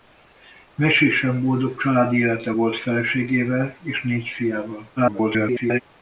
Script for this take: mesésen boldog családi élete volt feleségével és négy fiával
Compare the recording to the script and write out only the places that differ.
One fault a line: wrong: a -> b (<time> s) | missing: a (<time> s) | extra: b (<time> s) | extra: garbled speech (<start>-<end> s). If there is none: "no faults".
extra: garbled speech (5.0-5.8 s)